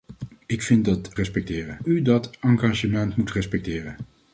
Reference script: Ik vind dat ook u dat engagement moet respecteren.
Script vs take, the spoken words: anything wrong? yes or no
yes